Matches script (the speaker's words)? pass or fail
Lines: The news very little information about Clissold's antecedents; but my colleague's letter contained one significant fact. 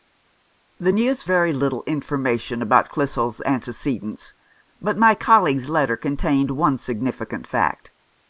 pass